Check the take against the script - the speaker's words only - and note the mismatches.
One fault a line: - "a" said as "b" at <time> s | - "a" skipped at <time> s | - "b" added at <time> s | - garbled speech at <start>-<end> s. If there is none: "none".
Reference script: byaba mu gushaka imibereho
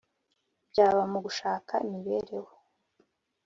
none